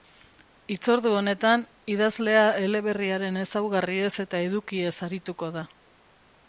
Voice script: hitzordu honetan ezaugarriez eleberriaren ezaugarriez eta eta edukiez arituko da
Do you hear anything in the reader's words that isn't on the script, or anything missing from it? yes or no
yes